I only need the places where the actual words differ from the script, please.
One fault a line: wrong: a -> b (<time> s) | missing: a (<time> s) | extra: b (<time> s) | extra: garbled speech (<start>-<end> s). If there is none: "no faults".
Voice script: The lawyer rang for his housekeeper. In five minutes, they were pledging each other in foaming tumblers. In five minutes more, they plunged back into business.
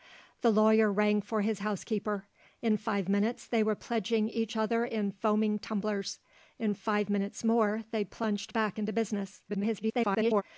extra: garbled speech (9.5-10.4 s)